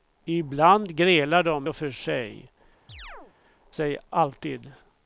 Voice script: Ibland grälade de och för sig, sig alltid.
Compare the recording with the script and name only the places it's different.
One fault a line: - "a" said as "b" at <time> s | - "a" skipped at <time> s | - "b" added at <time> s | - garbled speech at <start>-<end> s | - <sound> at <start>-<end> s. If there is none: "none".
- chirp at 2.9-3.3 s